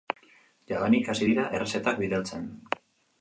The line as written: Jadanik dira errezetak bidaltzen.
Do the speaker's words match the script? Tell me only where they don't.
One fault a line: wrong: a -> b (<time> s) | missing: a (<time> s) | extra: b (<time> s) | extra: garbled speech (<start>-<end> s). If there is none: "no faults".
extra: hasi (1.1 s)